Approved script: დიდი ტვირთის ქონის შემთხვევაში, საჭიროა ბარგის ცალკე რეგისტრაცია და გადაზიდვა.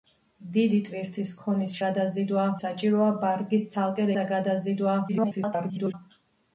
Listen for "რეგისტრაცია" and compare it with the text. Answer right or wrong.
wrong